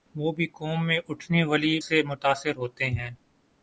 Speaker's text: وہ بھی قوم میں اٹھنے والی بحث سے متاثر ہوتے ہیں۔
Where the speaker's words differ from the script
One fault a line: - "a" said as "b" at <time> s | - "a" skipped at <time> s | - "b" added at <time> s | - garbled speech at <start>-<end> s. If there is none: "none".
- "بحث" skipped at 1.7 s